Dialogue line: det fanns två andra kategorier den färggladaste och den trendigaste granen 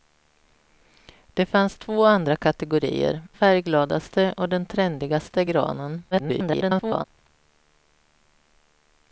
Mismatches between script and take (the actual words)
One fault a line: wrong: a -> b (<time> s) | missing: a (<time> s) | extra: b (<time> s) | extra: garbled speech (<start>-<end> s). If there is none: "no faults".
missing: den (3.2 s)
extra: garbled speech (6.1-7.1 s)